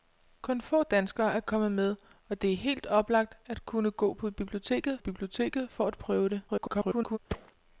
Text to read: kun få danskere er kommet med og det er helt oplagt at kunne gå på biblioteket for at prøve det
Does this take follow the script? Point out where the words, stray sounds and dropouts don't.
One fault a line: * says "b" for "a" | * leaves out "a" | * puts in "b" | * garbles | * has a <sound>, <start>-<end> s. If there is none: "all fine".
* puts in "biblioteket"
* garbles
* has a thud, 7.3-7.5 s